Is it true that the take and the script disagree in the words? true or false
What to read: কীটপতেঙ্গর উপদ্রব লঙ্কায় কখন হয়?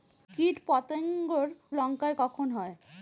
true